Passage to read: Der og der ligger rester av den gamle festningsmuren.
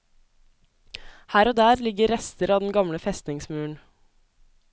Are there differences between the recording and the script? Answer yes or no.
yes